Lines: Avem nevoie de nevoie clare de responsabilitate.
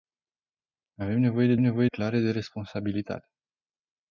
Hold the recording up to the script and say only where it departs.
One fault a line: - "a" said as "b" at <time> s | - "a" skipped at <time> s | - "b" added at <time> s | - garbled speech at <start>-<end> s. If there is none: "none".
none